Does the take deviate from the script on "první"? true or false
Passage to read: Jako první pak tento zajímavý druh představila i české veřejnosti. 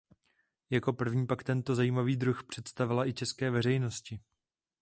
false